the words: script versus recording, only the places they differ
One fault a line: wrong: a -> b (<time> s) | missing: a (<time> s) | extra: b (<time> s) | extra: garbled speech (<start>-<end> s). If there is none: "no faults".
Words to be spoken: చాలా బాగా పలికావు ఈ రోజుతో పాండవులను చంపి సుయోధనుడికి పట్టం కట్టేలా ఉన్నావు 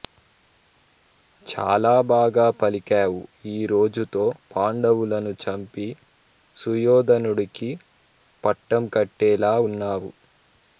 no faults